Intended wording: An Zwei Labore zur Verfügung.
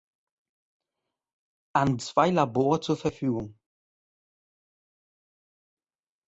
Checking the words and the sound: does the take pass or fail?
pass